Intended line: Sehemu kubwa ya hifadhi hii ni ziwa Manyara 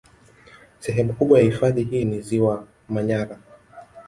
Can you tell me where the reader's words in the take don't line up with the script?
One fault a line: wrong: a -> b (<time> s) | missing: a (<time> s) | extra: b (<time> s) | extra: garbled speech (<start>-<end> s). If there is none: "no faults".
no faults